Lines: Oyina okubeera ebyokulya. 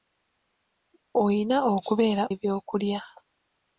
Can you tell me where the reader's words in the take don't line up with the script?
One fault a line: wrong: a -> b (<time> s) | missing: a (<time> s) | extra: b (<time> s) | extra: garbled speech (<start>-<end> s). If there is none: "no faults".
no faults